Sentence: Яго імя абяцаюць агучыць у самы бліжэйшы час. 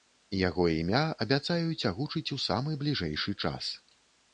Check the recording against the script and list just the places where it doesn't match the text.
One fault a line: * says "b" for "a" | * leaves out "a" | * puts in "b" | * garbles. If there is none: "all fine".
all fine